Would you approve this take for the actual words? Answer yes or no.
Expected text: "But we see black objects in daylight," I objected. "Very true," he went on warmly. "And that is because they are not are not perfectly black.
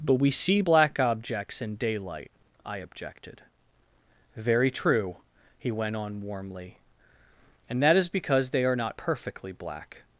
no